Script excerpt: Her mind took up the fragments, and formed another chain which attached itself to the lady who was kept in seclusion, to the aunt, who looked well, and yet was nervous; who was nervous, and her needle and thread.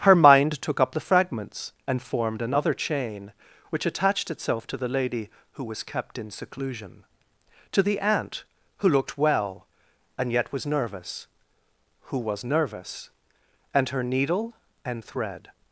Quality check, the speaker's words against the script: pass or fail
pass